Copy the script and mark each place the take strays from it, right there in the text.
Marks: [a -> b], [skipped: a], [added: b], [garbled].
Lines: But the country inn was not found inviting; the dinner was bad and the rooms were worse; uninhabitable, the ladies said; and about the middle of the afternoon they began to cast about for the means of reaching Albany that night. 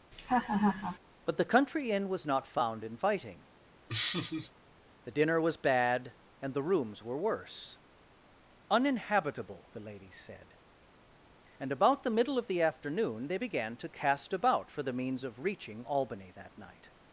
But the country inn was not found inviting; the dinner was bad and the rooms were worse; uninhabitable, the ladies said; and about the middle of the afternoon they began to cast about for the means of reaching Albany that night.